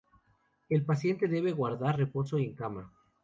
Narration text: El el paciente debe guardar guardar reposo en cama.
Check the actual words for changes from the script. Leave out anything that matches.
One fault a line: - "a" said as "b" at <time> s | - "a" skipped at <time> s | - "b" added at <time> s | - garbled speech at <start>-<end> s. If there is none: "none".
- "el" skipped at 0.8 s
- "guardar" skipped at 2.0 s